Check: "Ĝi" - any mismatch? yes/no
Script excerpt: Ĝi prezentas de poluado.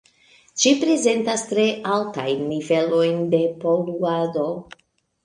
no